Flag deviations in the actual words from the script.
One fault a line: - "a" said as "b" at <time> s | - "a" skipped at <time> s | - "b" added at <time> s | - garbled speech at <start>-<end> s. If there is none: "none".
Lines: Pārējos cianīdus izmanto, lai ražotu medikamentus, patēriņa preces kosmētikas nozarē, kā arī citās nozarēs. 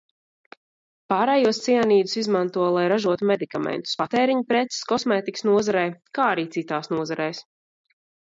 none